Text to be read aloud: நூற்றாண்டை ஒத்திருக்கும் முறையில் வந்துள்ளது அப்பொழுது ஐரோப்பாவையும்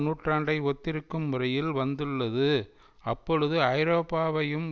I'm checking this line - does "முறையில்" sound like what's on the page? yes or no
yes